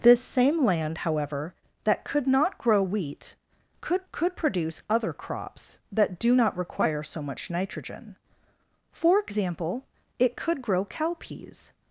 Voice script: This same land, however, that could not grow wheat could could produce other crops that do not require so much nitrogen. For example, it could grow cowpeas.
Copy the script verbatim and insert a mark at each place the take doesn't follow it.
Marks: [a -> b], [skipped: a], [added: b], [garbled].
This same land, however, that could not grow wheat could could produce other crops that do not require so much nitrogen. For example, it could grow cowpeas.